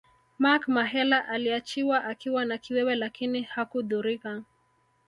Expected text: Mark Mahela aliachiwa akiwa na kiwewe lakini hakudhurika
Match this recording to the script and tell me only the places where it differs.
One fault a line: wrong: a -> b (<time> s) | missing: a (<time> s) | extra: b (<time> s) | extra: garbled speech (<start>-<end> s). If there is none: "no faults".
no faults